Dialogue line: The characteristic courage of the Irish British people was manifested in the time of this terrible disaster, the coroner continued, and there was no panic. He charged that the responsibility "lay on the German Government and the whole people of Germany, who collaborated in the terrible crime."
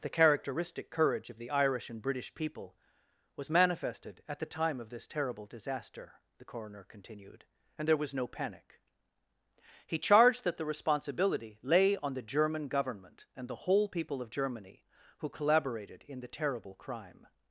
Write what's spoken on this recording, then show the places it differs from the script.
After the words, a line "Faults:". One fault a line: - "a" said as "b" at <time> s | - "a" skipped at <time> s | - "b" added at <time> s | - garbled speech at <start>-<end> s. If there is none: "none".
The characteristic courage of the Irish and British people was manifested at the time of this terrible disaster, the coroner continued, and there was no panic. He charged that the responsibility "lay on the German Government and the whole people of Germany, who collaborated in the terrible crime."
Faults:
- "and" added at 1.9 s
- "in" said as "at" at 4.3 s